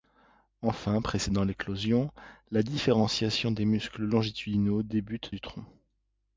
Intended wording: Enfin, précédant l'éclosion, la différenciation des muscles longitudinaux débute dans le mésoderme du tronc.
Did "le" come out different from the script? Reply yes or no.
yes